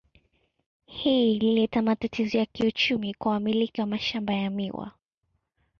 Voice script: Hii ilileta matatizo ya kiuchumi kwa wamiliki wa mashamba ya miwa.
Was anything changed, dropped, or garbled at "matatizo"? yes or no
no